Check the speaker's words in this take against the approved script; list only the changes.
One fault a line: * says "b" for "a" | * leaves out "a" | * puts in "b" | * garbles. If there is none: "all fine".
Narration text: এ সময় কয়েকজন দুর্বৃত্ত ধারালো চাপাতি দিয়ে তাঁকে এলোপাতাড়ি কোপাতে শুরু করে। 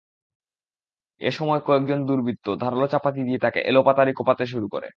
all fine